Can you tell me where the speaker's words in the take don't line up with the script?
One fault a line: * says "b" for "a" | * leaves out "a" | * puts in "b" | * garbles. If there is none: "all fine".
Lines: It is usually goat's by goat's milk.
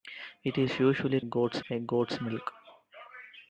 all fine